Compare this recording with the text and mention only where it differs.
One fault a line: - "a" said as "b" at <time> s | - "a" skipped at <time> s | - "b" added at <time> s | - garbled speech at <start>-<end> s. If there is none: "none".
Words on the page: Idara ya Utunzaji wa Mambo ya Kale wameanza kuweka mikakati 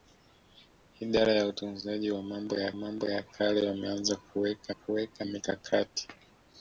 - "Mambo ya" added at 2.7 s
- "kuweka" added at 4.7 s